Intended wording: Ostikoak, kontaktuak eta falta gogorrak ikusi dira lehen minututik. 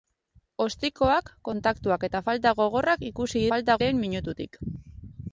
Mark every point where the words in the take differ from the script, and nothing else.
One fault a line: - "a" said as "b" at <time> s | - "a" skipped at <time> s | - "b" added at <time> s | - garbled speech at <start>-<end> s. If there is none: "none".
- "dira" said as "falta" at 3.5 s